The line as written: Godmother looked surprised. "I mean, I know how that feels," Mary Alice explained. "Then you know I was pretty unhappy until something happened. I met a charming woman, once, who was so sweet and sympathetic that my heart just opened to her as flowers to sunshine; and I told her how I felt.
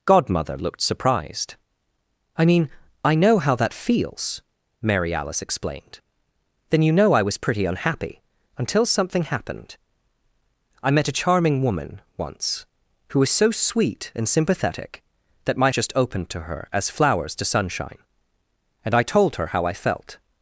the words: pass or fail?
fail